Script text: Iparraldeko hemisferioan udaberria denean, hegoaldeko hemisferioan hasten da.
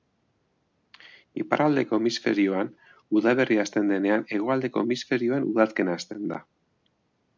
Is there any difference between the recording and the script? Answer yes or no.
yes